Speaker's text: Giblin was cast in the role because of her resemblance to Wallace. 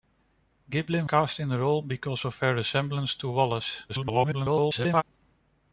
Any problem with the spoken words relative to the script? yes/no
yes